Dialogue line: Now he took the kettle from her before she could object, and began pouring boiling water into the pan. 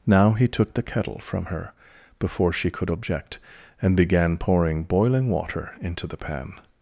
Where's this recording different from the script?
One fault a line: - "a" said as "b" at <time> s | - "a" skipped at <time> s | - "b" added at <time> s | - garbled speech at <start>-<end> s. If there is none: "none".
none